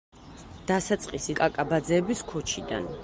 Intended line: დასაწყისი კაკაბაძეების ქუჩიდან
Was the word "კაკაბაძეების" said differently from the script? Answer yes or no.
no